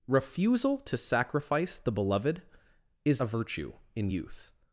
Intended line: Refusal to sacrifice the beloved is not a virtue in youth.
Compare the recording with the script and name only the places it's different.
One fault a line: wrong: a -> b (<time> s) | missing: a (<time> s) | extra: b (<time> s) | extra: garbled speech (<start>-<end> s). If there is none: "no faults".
missing: not (3.2 s)